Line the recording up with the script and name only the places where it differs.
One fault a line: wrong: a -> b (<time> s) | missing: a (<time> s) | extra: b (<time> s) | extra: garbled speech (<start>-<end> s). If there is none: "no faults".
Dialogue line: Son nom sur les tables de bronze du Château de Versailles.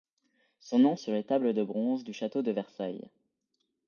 no faults